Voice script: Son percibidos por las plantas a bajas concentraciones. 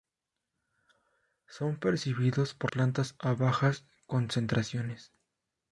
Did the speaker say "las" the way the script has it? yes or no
no